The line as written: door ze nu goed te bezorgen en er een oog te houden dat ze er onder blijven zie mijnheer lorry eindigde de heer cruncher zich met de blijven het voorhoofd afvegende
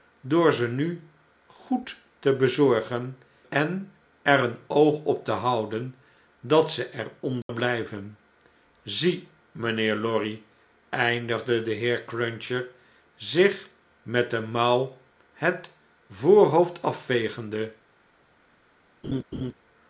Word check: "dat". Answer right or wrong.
right